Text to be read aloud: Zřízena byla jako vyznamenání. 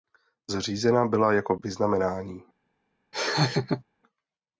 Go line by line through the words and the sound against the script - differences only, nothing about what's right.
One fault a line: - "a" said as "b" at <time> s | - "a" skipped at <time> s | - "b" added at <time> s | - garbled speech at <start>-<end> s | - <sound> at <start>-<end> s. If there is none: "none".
- laugh at 3.1-3.8 s